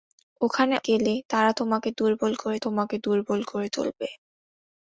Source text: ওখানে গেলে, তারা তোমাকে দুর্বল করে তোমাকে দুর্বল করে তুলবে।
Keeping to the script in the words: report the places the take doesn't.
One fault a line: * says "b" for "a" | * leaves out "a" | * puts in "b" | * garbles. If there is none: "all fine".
all fine